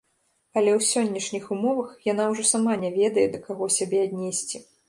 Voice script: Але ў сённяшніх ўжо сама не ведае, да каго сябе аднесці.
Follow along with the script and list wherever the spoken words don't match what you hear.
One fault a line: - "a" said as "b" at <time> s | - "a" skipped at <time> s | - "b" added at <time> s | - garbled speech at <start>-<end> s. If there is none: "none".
- "умовах яна" added at 1.6 s